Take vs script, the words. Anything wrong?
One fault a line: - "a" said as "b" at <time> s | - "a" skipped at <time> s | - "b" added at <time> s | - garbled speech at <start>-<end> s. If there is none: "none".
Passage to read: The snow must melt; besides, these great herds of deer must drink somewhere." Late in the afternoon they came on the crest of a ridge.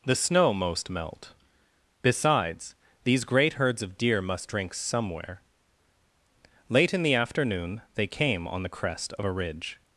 - "must" said as "most" at 0.5 s